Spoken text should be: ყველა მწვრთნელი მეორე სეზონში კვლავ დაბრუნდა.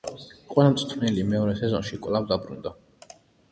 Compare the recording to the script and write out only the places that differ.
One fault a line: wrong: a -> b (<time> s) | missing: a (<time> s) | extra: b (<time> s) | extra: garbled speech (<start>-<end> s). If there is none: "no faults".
no faults